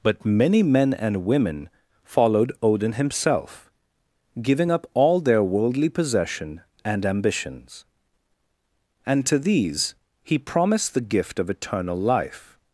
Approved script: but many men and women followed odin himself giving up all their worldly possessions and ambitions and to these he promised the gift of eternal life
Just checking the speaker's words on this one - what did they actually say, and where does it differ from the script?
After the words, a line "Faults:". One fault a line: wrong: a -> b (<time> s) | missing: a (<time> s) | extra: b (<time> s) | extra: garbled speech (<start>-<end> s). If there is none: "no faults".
but many men and women followed odin himself giving up all their worldly possession and ambitions and to these he promised the gift of eternal life
Faults:
wrong: possessions -> possession (5.9 s)